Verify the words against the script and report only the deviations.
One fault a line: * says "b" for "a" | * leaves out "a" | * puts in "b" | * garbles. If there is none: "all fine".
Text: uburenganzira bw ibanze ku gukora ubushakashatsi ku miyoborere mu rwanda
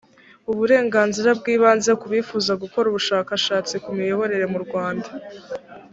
* puts in "bifuza"